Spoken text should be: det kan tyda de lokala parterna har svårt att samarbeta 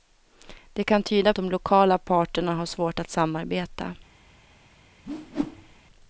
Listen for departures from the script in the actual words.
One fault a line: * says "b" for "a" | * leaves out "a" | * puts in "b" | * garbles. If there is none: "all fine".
all fine